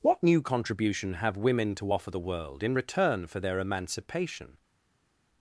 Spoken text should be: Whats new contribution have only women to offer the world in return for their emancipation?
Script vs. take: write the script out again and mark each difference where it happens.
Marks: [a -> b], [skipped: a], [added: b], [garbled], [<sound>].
[Whats -> What] new contribution have [skipped: only] women to offer the world in return for their emancipation?